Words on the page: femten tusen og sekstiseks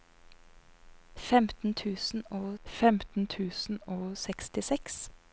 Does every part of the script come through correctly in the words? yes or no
no